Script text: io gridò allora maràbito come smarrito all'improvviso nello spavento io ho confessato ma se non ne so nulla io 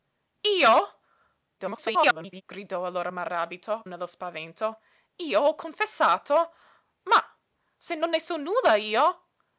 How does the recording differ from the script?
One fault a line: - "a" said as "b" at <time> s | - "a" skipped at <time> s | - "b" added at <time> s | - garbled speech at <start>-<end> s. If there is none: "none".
- garbled speech at 1.6-2.4 s
- "come smarrito all'improvviso" skipped at 3.8 s